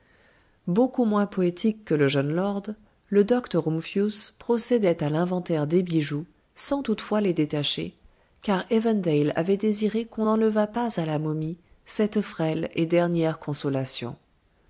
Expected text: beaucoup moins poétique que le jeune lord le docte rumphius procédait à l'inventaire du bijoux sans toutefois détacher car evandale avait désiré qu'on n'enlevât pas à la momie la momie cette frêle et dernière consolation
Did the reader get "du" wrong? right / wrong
wrong